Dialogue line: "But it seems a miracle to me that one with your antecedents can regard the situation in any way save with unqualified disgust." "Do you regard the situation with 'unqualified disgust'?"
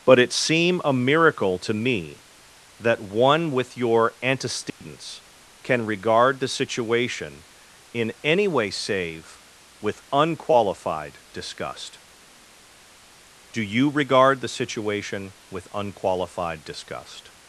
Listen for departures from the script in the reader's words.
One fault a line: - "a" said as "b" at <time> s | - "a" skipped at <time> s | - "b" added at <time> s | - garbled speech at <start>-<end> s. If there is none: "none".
- "seems" said as "seem" at 0.3 s